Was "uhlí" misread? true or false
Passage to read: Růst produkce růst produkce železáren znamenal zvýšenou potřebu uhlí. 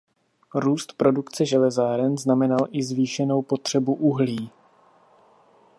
false